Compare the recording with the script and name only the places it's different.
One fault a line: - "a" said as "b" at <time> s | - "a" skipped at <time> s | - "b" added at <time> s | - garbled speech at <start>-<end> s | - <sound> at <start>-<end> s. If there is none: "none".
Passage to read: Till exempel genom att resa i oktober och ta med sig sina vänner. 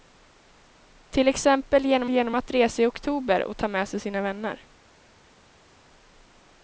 - "genom" added at 2.1 s